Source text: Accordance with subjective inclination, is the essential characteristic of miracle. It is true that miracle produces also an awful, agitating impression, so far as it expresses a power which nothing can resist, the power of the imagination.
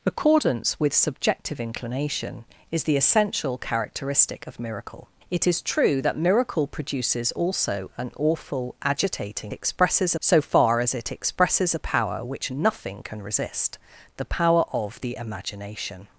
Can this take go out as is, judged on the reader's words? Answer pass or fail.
fail